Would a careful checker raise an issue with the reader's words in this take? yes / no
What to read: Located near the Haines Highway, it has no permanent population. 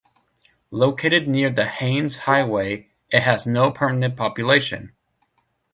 no